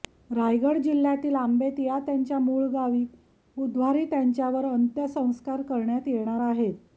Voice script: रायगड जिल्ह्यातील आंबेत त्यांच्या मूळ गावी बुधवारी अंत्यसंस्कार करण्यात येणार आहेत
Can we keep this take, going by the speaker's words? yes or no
no